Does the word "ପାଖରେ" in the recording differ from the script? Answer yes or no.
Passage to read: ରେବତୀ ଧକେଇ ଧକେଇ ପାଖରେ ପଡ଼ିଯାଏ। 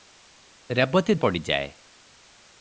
yes